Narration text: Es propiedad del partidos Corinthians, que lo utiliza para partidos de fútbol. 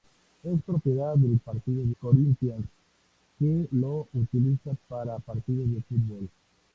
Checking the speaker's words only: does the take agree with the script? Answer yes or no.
yes